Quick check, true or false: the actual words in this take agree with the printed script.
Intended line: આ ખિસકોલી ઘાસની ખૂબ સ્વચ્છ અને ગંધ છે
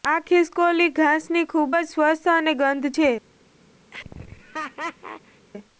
false